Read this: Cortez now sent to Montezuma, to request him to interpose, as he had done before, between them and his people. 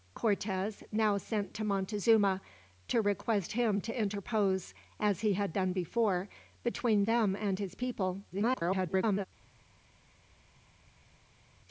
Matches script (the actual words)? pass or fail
fail